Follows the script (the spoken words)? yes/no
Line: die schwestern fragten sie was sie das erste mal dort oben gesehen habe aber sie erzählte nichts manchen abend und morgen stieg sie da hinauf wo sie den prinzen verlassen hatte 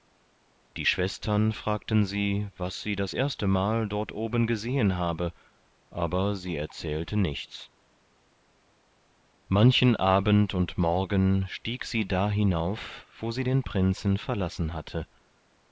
yes